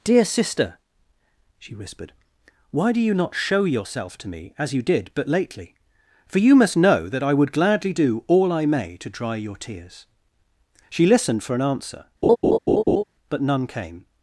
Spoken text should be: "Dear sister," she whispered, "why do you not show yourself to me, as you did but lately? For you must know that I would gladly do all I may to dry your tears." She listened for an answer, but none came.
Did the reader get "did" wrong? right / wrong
right